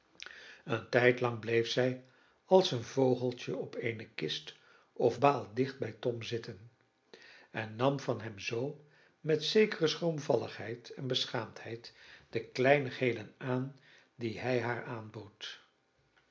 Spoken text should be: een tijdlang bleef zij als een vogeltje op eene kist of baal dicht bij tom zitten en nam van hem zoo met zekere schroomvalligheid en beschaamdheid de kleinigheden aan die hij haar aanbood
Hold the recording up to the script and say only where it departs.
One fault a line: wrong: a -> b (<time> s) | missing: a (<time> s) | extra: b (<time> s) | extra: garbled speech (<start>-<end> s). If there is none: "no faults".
no faults